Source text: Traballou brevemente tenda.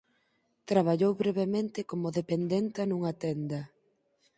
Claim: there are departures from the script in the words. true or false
true